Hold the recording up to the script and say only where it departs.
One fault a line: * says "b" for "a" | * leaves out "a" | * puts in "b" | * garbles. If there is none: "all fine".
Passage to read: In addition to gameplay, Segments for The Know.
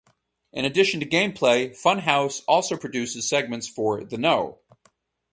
* puts in "Funhaus also produces"